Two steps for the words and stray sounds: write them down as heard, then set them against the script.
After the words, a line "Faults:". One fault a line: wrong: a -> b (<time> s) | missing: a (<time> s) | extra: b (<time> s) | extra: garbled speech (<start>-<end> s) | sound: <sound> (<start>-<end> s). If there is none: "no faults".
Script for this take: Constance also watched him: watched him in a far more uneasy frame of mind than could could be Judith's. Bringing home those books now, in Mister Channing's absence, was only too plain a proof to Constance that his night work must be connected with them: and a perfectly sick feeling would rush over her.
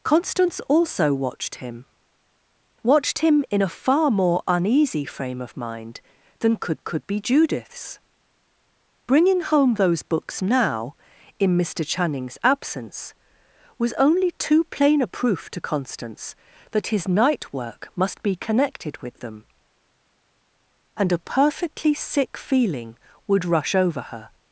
Constance also watched him: watched him in a far more uneasy frame of mind than could could be Judith's. Bringing home those books now, in Mister Channing's absence, was only too plain a proof to Constance that his night work must be connected with them: and a perfectly sick feeling would rush over her.
Faults:
no faults